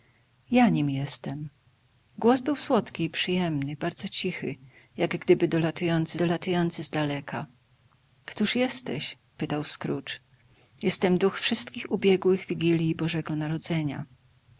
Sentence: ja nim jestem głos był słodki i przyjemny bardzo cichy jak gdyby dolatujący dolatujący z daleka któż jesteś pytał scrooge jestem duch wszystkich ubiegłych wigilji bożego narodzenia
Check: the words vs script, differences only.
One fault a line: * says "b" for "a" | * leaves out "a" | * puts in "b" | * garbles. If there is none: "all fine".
all fine